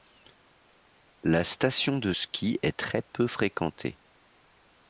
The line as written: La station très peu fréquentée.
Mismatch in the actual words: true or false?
true